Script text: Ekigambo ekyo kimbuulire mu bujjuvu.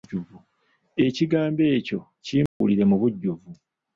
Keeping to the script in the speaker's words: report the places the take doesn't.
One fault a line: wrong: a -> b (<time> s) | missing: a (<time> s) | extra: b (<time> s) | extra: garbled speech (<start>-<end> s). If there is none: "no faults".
no faults